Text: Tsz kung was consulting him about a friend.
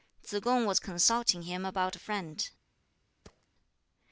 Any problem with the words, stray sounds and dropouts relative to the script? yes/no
yes